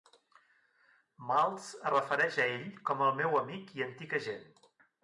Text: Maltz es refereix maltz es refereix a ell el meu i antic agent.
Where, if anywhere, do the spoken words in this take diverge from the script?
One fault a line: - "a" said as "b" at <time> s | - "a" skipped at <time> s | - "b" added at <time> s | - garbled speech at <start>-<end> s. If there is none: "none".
- "maltz es refereix" skipped at 2.4 s
- "com" added at 2.9 s
- "amic" added at 3.4 s